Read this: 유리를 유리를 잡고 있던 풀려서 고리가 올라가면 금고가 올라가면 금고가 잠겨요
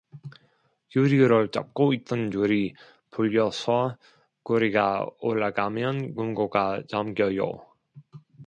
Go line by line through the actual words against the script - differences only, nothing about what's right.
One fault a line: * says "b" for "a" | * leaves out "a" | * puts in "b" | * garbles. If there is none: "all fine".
* leaves out "유리를"
* puts in "줄이"
* leaves out "올라가면 금고가"